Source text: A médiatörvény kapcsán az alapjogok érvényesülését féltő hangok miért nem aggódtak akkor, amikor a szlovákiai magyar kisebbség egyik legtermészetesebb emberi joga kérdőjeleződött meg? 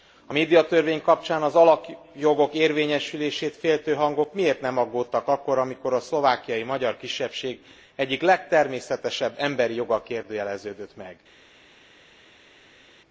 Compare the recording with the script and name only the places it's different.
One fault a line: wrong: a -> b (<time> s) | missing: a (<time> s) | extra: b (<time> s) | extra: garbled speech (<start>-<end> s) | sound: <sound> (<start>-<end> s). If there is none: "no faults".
no faults